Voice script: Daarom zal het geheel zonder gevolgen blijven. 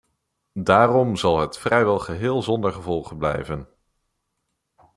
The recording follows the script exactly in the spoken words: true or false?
false